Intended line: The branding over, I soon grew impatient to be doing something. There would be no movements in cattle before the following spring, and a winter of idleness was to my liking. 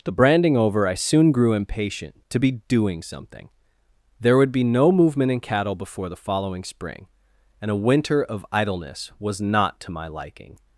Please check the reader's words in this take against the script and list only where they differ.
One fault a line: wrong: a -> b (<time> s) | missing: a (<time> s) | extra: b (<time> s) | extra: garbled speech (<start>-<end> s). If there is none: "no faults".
wrong: movements -> movement (4.9 s)
extra: not (9.4 s)